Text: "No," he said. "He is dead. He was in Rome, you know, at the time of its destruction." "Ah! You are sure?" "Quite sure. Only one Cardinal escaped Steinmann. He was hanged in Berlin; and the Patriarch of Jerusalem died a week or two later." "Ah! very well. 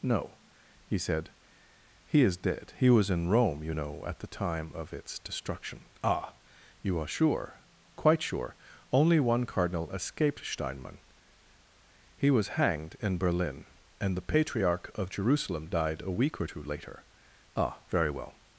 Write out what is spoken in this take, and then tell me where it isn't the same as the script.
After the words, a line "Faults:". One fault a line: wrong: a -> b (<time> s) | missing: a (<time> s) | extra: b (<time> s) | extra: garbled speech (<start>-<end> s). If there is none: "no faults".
"No," he said. "He is dead. He was in Rome, you know, at the time of its destruction." "Ah! You are sure?" "Quite sure. Only one Cardinal escaped Steinmann. He was hanged in Berlin; and the Patriarch of Jerusalem died a week or two later." "Ah! very well.
Faults:
no faults